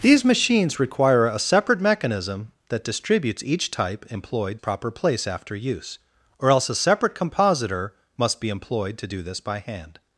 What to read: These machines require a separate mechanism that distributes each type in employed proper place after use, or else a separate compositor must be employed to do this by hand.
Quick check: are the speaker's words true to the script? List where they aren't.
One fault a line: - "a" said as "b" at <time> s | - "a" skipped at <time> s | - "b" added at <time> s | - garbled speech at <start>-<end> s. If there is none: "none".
none